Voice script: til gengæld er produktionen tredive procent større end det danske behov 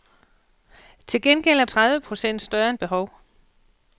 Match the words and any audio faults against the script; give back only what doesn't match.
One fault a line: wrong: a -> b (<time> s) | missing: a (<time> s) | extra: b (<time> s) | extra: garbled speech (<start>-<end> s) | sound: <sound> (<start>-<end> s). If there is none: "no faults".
missing: produktionen (1.6 s)
missing: det danske (2.8 s)